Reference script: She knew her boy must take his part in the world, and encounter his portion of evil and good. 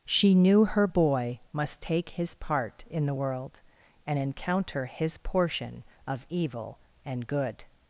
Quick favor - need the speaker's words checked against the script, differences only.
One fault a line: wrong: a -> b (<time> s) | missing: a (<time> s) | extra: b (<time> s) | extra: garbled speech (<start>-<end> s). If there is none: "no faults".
no faults